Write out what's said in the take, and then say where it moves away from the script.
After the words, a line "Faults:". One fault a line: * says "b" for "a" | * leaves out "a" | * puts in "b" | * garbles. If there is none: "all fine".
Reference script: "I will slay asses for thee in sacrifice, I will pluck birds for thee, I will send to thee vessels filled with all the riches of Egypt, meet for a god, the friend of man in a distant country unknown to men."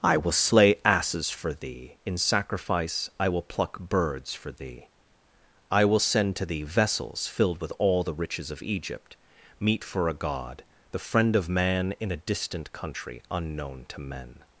"I will slay asses for thee in sacrifice, I will pluck birds for thee, I will send to thee vessels filled with all the riches of Egypt, meet for a god, the friend of man in a distant country unknown to men."
Faults:
all fine